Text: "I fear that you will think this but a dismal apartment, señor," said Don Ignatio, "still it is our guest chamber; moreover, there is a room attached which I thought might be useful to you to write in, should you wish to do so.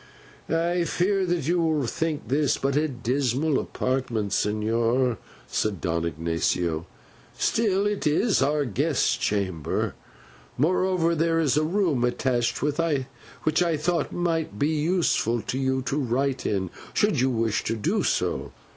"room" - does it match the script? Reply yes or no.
yes